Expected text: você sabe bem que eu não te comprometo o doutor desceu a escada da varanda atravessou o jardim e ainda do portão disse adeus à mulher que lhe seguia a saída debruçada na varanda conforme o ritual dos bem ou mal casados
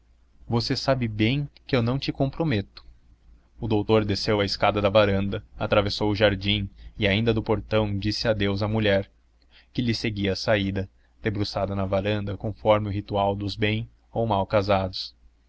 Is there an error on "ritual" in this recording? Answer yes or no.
no